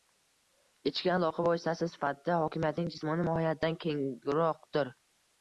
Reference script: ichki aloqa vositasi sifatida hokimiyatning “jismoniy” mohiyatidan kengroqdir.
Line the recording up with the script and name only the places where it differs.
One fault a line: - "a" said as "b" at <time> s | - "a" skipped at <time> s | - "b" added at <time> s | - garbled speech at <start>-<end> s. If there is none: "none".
none